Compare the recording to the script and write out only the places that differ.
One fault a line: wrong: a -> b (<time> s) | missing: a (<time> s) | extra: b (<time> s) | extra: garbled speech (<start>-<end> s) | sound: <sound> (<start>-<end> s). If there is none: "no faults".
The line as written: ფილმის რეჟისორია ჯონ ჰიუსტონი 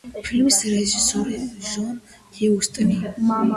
no faults